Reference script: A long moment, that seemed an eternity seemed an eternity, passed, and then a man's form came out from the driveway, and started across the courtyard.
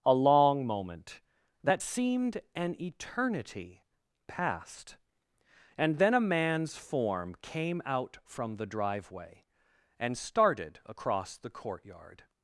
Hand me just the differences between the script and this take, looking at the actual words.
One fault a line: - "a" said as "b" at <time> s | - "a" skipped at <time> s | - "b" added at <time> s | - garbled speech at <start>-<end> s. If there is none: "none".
- "seemed an eternity" skipped at 3.8 s